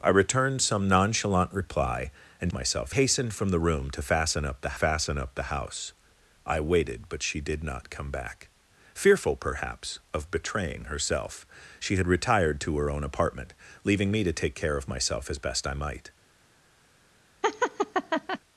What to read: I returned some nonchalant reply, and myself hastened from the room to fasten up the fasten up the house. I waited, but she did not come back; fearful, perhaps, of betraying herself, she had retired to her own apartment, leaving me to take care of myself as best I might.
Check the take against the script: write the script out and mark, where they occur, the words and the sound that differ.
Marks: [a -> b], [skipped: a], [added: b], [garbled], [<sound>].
I returned some nonchalant reply, and myself hastened from the room to fasten up the fasten up the house. I waited, but she did not come back; fearful, perhaps, of betraying herself, she had retired to her own apartment, leaving me to take care of myself as best I might. [laugh]